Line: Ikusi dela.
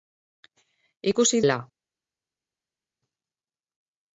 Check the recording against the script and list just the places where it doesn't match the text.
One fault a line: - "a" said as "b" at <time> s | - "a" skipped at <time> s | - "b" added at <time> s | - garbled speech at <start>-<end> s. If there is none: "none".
none